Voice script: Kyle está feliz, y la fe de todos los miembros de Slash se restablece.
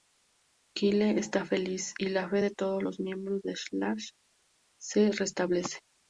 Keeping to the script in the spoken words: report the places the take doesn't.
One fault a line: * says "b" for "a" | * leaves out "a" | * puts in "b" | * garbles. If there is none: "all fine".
all fine